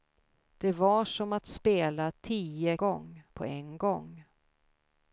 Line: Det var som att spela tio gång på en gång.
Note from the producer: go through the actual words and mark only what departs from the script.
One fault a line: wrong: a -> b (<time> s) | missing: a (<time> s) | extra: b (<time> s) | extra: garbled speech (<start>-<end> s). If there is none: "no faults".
no faults